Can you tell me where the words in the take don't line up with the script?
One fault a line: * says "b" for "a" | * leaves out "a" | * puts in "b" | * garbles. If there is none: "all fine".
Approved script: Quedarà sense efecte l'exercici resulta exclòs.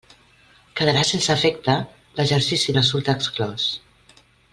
all fine